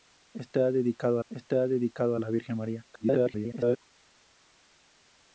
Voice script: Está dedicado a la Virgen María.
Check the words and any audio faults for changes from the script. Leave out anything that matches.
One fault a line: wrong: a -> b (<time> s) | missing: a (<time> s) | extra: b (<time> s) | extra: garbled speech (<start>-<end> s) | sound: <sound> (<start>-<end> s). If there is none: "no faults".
extra: está dedicado (1.3 s)
extra: garbled speech (2.9-3.8 s)